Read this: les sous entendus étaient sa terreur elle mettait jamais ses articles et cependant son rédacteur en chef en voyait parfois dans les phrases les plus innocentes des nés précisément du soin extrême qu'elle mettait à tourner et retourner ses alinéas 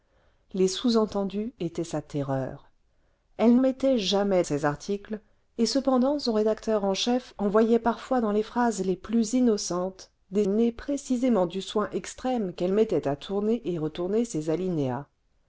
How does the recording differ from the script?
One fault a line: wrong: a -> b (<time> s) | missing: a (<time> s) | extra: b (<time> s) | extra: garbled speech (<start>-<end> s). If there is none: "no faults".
no faults